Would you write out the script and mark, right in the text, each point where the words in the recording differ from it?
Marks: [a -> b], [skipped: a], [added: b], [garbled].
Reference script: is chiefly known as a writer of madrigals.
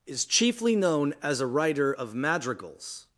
is chiefly known as a writer of madrigals.